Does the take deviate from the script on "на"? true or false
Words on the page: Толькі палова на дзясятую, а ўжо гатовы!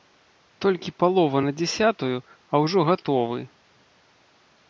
false